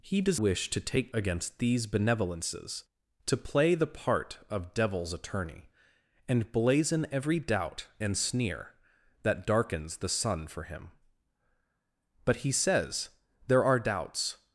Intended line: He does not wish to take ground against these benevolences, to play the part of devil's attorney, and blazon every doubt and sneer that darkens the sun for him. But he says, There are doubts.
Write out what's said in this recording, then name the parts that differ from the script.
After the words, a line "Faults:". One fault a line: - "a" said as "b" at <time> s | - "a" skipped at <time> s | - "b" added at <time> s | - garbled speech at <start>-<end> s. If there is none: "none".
He does wish to take against these benevolences, to play the part of devil's attorney, and blazon every doubt and sneer that darkens the sun for him. But he says, There are doubts.
Faults:
- "not" skipped at 0.4 s
- "ground" skipped at 1.1 s